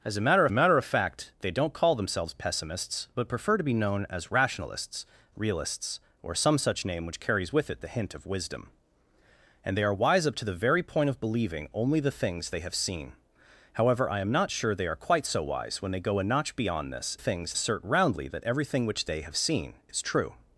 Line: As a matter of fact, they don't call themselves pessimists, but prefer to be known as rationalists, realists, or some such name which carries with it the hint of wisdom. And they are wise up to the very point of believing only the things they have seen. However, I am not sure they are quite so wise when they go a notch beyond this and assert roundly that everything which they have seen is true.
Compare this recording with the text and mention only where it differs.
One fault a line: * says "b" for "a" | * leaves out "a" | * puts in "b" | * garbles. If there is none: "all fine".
* puts in "matter"
* says "things" for "and"